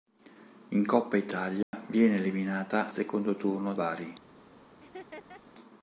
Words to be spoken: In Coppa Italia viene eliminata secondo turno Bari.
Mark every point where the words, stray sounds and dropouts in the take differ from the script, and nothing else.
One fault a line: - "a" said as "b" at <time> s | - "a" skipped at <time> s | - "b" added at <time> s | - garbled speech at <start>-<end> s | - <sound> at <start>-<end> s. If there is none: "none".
- dropout at 1.6-1.7 s
- laugh at 4.8-5.4 s